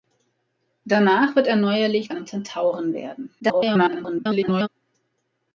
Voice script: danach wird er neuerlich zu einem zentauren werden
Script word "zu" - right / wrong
wrong